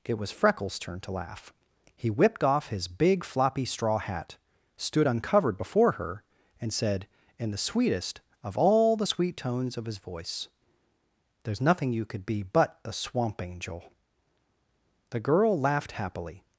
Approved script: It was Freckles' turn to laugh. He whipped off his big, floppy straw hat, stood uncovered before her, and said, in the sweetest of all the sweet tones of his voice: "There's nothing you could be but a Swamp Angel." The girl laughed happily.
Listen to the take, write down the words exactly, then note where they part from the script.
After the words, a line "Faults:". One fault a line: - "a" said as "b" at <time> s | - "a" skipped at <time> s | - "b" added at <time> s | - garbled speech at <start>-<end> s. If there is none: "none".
It was Freckles' turn to laugh. He whipped off his big, floppy straw hat, stood uncovered before her, and said, in the sweetest of all the sweet tones of his voice: "There's nothing you could be but a Swamp Angel." The girl laughed happily.
Faults:
none